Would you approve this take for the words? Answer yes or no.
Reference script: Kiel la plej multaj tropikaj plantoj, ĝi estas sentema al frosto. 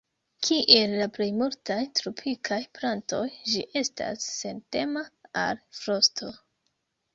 yes